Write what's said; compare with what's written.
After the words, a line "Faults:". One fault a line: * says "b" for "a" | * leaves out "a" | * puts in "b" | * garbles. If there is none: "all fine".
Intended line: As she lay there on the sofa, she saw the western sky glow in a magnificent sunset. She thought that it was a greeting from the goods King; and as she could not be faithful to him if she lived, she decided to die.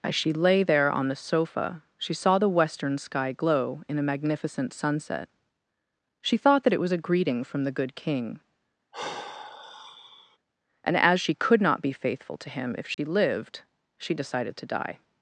As she lay there on the sofa, she saw the western sky glow in a magnificent sunset. She thought that it was a greeting from the good King; and as she could not be faithful to him if she lived, she decided to die.
Faults:
* says "good" for "goods"